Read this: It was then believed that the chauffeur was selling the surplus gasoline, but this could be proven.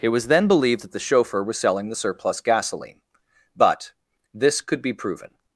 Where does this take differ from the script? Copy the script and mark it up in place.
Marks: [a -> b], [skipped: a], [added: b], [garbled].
It was then believed that the chauffeur was selling the surplus gasoline, but this could be proven.